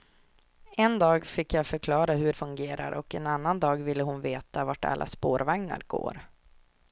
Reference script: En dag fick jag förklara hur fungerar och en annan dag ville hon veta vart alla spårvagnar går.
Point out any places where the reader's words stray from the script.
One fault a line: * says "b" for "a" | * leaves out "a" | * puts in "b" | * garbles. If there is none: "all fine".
all fine